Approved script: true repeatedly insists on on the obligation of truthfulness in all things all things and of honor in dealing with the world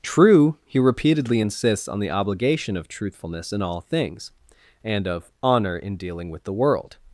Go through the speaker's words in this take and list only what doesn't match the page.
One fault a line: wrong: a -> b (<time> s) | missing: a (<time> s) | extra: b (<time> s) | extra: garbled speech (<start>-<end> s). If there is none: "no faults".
extra: he (0.7 s)
missing: on (2.0 s)
missing: all things (4.3 s)